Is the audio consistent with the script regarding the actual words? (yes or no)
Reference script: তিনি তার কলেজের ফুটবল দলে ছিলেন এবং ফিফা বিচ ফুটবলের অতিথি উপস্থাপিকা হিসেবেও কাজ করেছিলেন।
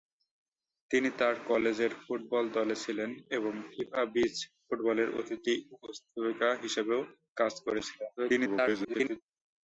no